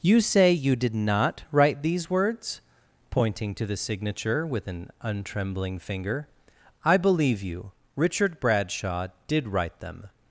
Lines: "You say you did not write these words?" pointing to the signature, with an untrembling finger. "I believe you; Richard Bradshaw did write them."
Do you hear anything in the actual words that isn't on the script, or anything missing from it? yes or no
no